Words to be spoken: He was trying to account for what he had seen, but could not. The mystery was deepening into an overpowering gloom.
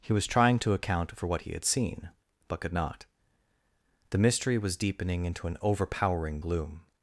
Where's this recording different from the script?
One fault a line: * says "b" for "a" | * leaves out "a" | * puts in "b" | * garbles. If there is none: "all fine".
all fine